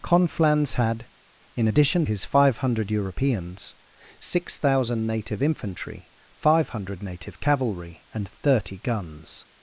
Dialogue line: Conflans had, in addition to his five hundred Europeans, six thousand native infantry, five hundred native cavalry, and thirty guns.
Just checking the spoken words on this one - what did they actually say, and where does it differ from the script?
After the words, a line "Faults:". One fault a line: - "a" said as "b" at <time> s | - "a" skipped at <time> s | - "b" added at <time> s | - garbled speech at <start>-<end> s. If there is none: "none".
Conflans had, in addition his five hundred Europeans, six thousand native infantry, five hundred native cavalry, and thirty guns.
Faults:
- "to" skipped at 2.1 s